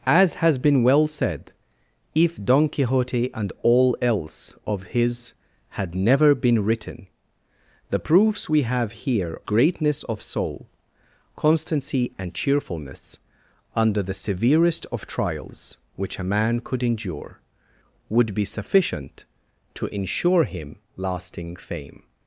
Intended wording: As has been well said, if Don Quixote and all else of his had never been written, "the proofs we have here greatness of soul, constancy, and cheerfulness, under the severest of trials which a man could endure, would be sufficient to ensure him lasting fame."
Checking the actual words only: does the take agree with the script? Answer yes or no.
yes